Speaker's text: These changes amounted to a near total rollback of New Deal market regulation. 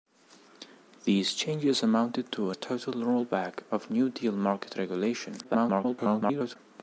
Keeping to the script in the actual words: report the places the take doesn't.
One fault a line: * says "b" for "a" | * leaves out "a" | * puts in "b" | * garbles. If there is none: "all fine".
* leaves out "near"
* garbles